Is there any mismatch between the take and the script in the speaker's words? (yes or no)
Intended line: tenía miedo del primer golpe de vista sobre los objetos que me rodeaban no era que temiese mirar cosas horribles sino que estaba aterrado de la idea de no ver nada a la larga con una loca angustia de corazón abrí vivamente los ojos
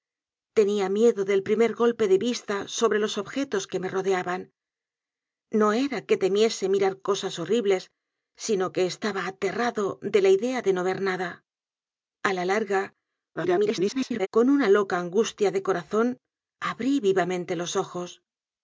yes